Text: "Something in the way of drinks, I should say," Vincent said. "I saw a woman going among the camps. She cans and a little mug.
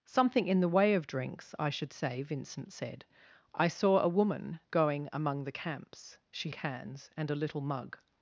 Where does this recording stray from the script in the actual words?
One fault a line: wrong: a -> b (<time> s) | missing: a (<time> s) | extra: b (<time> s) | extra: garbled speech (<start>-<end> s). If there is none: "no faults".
no faults